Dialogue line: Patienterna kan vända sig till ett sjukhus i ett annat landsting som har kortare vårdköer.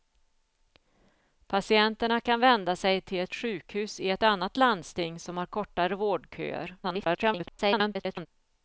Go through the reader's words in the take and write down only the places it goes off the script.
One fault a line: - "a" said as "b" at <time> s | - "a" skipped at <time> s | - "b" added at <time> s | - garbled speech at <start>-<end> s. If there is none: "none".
- garbled speech at 6.8-8.3 s